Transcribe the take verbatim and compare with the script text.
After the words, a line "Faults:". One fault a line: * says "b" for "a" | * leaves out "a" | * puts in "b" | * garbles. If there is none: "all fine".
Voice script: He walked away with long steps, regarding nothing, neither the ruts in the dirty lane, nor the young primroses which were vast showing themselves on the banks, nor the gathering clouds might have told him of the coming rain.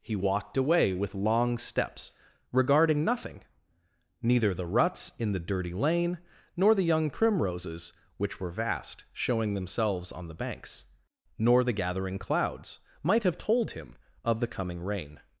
He walked away with long steps, regarding nothing, neither the ruts in the dirty lane, nor the young primroses which were vast showing themselves on the banks, nor the gathering clouds might have told him of the coming rain.
Faults:
all fine